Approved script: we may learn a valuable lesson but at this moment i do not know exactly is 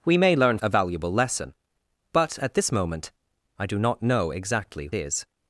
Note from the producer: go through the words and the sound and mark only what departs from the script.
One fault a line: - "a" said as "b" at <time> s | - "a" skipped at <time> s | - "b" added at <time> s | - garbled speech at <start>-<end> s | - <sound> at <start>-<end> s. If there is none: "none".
none